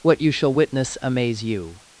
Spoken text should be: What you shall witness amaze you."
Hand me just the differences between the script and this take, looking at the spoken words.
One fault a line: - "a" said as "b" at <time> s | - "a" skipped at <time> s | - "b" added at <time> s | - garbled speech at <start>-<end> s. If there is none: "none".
none